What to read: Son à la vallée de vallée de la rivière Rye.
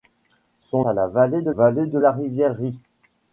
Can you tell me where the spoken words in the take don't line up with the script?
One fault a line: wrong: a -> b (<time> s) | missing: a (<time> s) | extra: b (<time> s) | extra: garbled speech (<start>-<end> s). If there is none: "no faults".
no faults